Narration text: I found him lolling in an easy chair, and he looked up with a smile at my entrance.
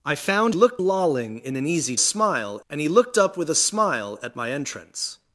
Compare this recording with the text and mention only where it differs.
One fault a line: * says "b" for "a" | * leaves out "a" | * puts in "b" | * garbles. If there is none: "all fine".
* says "looked" for "him"
* says "smile" for "chair"